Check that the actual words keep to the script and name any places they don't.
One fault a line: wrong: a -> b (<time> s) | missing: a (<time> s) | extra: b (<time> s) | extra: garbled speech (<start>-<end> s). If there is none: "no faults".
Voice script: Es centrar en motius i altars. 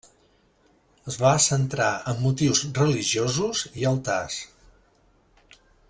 extra: va (1.2 s)
extra: religiosos (2.8 s)